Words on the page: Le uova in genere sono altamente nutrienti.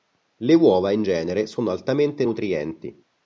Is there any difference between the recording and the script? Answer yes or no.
no